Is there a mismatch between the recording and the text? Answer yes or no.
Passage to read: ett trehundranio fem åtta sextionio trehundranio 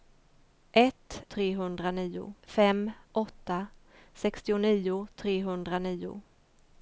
no